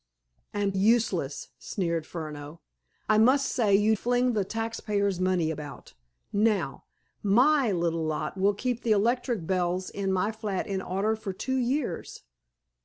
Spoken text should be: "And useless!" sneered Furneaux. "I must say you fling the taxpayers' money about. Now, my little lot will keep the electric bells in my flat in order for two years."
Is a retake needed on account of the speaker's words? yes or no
no